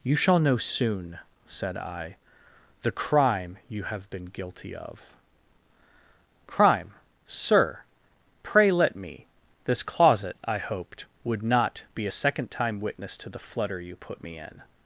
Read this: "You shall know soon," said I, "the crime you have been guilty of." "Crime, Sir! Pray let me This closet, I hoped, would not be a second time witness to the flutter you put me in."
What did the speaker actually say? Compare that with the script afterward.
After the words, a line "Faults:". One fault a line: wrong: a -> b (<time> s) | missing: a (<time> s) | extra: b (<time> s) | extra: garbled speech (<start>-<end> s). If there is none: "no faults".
"You shall know soon," said I, "the crime you have been guilty of." "Crime, Sir! Pray let me This closet, I hoped, would not be a second time witness to the flutter you put me in."
Faults:
no faults